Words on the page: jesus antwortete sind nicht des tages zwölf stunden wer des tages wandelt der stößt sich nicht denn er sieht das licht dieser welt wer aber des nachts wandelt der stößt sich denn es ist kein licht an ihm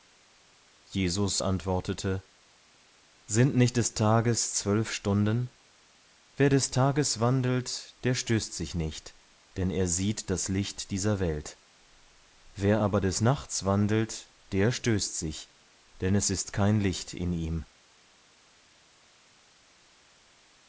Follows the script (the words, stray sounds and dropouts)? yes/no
no